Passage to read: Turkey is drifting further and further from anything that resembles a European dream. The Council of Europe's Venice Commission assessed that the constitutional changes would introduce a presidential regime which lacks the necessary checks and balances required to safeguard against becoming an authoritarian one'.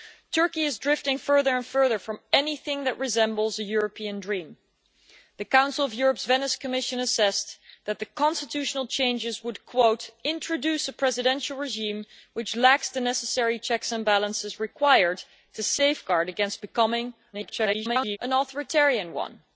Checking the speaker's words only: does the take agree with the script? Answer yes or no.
no